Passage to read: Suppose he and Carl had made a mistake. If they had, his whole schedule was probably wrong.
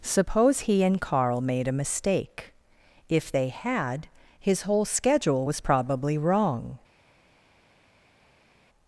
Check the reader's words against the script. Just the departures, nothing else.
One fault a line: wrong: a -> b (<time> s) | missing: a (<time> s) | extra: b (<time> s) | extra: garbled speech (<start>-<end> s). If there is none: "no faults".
missing: had (1.4 s)